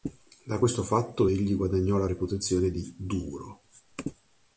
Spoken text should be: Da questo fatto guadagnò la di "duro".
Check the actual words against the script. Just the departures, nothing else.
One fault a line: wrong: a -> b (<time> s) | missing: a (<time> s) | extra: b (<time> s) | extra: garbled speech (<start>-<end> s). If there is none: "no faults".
extra: egli (1.2 s)
extra: reputazione (2.0 s)